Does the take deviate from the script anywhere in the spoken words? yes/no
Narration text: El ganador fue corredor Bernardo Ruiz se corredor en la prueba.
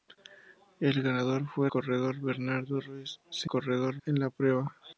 no